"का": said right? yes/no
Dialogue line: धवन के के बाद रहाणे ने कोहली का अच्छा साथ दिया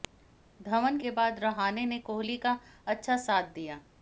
yes